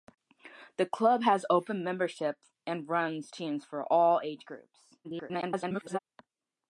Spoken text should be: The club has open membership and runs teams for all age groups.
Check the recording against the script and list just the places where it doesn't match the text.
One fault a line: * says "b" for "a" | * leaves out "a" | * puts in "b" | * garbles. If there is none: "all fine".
* garbles